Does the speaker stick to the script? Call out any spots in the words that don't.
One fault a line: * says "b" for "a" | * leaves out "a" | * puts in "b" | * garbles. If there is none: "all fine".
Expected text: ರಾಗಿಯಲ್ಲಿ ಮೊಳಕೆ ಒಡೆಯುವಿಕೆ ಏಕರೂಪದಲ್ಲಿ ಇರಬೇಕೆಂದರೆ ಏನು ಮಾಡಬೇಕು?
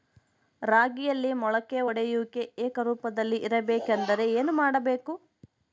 all fine